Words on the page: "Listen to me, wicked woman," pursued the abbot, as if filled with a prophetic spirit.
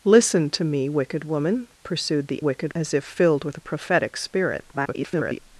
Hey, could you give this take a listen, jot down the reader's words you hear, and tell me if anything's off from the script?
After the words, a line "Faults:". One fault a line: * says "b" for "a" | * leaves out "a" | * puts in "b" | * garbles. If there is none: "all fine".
"Listen to me, wicked woman," pursued the wicked, as if filled with a prophetic spirit. [garbled]
Faults:
* says "wicked" for "abbot"
* garbles